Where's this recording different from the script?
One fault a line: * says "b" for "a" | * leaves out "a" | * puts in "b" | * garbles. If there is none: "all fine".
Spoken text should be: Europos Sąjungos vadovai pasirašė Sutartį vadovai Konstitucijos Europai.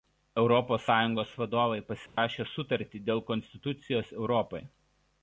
* says "dėl" for "vadovai"